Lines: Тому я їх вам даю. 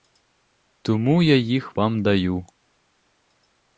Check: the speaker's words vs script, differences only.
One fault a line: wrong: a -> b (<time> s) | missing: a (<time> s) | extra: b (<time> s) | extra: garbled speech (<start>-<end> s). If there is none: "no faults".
no faults